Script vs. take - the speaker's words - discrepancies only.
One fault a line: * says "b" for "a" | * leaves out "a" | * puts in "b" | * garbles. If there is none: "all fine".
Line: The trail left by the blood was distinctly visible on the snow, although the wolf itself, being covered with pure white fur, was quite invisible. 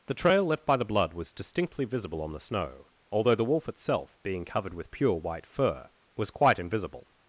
all fine